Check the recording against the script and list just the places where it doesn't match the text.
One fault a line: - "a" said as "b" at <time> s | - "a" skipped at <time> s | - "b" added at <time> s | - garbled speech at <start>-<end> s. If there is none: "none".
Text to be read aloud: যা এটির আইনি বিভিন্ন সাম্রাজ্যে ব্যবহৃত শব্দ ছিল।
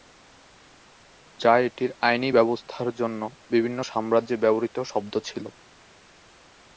- "ব্যবস্থার জন্য" added at 2.3 s